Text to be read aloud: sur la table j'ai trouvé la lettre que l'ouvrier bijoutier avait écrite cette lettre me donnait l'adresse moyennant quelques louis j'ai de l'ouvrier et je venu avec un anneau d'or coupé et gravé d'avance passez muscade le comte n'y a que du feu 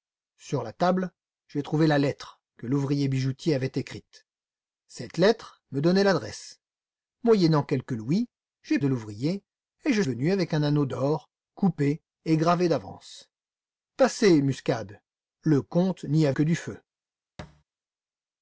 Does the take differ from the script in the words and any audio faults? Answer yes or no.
yes